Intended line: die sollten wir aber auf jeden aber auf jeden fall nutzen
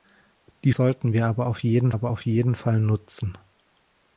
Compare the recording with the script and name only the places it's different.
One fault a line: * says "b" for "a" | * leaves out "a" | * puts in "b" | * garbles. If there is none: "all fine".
all fine